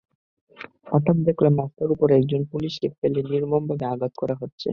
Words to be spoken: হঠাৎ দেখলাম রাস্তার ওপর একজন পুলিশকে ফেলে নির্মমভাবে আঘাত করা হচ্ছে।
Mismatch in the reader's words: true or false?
false